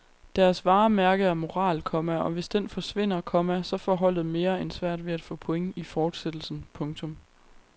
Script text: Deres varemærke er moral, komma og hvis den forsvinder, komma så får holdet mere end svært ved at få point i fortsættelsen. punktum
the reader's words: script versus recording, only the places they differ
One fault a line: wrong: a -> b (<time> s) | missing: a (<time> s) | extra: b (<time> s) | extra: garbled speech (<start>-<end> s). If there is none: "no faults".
no faults